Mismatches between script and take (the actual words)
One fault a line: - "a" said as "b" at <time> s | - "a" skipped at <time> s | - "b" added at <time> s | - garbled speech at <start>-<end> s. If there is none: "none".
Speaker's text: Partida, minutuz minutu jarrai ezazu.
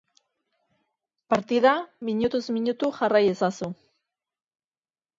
none